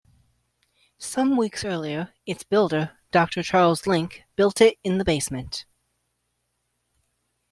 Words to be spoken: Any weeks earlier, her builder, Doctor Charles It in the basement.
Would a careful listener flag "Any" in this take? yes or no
yes